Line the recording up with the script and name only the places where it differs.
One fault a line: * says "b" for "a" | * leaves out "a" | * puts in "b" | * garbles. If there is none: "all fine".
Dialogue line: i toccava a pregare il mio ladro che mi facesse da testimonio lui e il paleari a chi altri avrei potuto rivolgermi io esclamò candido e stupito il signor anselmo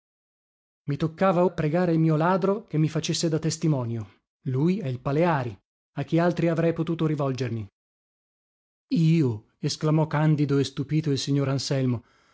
all fine